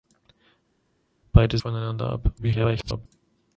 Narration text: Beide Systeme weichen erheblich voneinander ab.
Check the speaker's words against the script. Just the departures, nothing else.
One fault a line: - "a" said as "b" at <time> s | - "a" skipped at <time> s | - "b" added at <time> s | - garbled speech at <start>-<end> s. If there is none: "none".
- "Systeme weichen erheblich" skipped at 1.6 s
- garbled speech at 2.4-3.1 s